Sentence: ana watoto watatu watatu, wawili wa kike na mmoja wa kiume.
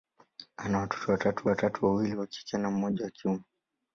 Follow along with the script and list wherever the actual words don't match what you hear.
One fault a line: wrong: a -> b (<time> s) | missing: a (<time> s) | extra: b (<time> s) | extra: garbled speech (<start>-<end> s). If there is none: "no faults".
no faults